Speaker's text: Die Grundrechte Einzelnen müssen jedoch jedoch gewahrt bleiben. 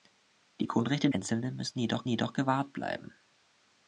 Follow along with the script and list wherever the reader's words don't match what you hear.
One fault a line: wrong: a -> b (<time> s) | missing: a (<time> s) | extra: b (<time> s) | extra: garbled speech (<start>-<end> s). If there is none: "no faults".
no faults